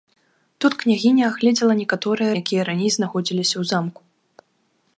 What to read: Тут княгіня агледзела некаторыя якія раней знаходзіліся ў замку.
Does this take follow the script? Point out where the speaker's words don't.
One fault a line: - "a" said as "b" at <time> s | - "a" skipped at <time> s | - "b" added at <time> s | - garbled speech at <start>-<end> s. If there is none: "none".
none